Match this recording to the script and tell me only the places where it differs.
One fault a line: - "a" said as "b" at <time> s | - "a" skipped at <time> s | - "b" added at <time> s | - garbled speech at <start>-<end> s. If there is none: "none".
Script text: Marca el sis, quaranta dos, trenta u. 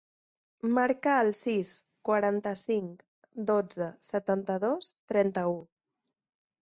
- "cinc dotze setanta" added at 2.6 s